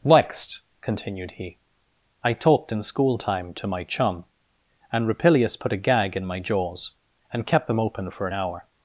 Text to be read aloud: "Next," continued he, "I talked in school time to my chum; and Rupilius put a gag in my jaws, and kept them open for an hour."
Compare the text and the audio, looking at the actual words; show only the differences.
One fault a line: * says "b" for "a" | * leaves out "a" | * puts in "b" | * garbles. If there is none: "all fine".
all fine